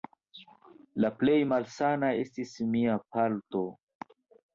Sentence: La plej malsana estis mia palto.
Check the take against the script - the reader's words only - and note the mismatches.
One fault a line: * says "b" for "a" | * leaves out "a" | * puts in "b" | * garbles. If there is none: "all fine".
all fine